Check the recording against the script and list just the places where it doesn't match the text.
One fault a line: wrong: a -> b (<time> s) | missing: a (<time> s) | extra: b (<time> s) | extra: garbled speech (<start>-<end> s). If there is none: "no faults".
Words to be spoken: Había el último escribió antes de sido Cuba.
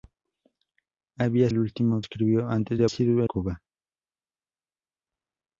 no faults